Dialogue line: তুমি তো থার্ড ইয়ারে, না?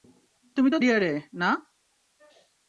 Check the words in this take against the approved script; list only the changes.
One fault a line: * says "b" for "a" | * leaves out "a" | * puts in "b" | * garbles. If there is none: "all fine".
* leaves out "থার্ড"